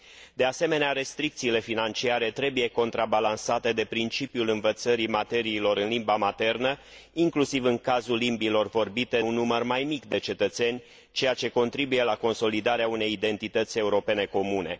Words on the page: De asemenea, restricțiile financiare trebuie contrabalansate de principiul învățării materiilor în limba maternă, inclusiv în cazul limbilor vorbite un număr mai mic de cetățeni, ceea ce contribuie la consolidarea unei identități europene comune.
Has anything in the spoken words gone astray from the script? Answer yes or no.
no